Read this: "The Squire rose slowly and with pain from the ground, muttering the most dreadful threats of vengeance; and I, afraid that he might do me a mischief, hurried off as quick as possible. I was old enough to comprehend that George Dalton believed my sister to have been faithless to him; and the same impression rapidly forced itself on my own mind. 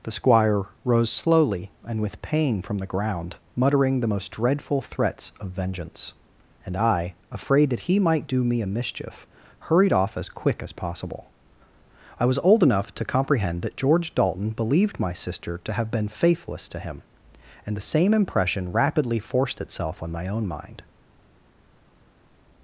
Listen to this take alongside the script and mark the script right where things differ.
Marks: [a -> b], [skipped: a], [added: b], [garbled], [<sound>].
"The Squire rose slowly and with pain from the ground, muttering the most dreadful threats of vengeance; and I, afraid that he might do me a mischief, hurried off as quick as possible. I was old enough to comprehend that George Dalton believed my sister to have been faithless to him; and the same impression rapidly forced itself on my own mind.